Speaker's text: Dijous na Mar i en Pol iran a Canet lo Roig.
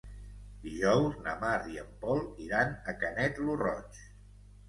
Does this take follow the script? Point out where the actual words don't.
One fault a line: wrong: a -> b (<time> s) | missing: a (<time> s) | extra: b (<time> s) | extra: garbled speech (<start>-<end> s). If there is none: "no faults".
no faults